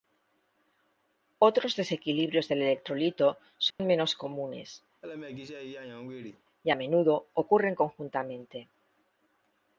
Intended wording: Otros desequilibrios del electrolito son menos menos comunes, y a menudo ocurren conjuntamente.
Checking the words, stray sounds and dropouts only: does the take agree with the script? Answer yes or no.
no